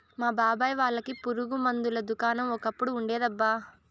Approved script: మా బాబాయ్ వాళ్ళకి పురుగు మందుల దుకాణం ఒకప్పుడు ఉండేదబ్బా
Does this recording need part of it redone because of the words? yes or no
no